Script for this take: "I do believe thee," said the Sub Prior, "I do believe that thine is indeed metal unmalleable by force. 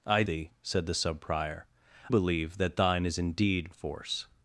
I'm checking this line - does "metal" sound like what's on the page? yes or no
no